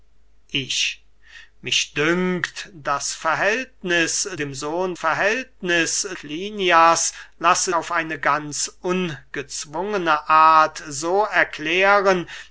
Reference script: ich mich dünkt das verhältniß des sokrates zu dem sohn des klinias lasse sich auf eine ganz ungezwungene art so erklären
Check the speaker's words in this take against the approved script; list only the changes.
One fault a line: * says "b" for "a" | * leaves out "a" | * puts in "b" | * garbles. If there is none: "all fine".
* leaves out "des sokrates zu"
* says "verhältniß" for "des"
* leaves out "sich"